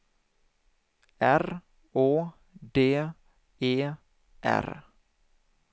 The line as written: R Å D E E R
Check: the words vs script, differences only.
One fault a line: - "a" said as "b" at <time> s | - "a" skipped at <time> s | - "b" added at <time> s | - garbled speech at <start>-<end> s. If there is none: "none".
- "E" skipped at 3.7 s